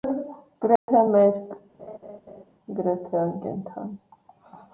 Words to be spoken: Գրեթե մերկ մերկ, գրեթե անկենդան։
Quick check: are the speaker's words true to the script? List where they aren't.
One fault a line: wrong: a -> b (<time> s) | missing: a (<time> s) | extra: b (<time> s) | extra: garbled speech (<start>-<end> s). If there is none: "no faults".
missing: մերկ (1.5 s)